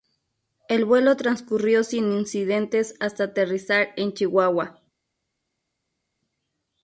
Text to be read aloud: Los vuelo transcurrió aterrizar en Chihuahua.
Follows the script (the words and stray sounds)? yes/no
no